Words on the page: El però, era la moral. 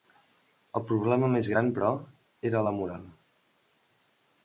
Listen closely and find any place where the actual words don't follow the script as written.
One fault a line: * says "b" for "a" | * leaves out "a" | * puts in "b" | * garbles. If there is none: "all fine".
* puts in "problema més gran"